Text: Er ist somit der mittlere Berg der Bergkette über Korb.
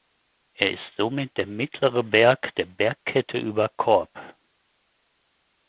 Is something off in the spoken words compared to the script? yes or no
no